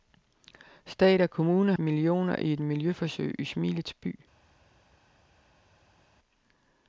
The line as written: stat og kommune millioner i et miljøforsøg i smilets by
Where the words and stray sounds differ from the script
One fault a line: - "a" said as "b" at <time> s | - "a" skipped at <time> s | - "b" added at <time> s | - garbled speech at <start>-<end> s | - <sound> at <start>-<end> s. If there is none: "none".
none